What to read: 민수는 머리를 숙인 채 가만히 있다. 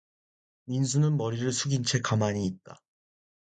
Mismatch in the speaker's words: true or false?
false